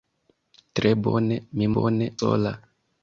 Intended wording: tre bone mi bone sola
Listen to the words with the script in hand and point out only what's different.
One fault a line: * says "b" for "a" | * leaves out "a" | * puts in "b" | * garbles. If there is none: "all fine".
all fine